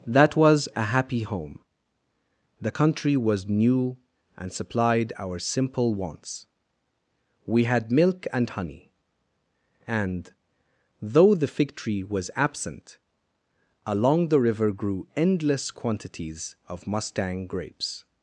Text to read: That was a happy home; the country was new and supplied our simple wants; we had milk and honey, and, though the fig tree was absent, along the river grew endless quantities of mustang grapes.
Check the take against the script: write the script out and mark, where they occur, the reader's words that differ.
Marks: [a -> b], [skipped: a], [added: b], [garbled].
That was a happy home; the country was new and supplied our simple wants; we had milk and honey, and, though the fig tree was absent, along the river grew endless quantities of mustang grapes.